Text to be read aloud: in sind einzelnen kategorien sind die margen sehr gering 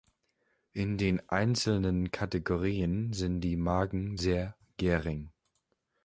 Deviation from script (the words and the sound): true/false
true